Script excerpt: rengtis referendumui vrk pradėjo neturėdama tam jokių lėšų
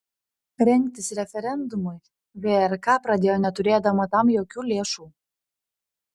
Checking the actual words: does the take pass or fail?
pass